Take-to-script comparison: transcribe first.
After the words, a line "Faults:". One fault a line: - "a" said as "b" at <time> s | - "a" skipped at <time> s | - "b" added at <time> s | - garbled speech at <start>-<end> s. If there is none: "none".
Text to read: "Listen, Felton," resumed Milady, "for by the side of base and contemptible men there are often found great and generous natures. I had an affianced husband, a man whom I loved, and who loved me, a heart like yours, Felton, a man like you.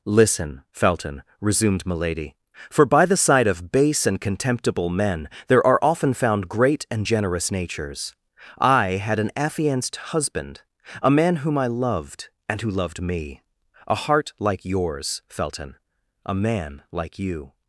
"Listen, Felton," resumed Milady, "for by the side of base and contemptible men there are often found great and generous natures. I had an affianced husband, a man whom I loved, and who loved me, a heart like yours, Felton, a man like you.
Faults:
none